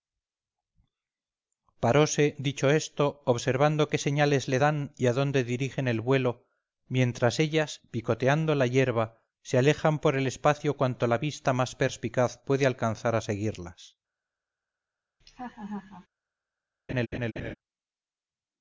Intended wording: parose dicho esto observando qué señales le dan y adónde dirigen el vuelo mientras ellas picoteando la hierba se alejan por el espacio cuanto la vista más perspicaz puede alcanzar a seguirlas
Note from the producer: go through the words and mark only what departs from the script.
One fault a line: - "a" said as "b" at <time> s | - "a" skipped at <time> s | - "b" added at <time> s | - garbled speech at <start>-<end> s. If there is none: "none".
none